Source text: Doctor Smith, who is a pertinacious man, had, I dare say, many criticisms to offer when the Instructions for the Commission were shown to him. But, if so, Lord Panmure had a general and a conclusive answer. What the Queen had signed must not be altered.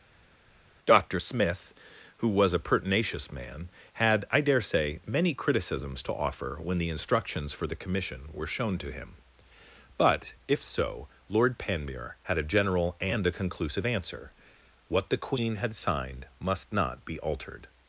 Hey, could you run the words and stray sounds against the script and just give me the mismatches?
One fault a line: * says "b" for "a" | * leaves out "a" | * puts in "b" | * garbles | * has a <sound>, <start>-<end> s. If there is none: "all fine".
* says "was" for "is"